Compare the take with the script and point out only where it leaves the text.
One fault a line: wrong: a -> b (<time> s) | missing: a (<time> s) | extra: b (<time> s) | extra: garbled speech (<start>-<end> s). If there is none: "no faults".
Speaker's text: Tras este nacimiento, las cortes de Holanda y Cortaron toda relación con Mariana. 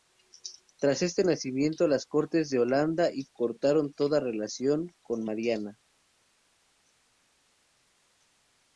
no faults